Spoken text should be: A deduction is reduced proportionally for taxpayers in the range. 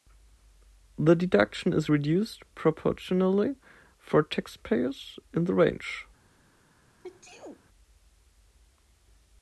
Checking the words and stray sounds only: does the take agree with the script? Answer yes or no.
no